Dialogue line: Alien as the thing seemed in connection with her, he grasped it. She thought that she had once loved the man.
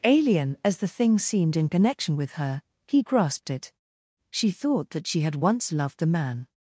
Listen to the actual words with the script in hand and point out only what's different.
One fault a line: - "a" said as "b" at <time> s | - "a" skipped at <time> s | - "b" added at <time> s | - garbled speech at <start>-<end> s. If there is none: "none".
none